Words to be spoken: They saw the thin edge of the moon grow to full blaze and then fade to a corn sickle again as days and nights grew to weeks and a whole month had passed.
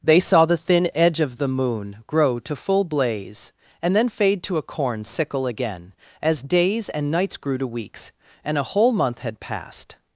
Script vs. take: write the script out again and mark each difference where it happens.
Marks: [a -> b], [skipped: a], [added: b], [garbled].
They saw the thin edge of the moon grow to full blaze and then fade to a corn sickle again as days and nights grew to weeks and a whole month had passed.